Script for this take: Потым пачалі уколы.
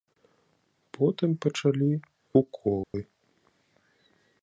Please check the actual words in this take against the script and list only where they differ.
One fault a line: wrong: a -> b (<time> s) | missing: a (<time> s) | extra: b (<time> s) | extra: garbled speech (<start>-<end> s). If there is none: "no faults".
no faults